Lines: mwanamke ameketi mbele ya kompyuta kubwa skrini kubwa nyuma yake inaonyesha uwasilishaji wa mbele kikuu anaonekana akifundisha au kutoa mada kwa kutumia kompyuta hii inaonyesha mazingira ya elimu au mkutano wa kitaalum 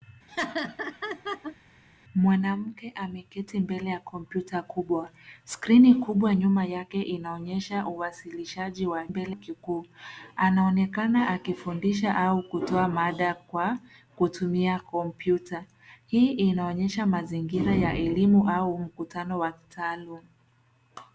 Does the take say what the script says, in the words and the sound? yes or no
no